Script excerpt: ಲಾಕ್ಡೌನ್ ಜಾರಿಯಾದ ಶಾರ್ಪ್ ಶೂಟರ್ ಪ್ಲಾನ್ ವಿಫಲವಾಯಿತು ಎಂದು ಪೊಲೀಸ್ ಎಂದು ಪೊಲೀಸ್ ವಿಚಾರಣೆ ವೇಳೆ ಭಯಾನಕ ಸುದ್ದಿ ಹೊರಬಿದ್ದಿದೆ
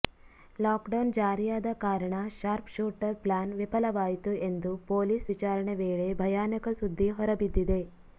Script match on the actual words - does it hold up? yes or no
no